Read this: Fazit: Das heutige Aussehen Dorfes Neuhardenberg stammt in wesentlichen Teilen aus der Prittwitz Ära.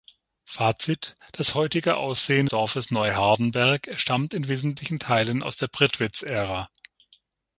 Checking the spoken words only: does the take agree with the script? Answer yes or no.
yes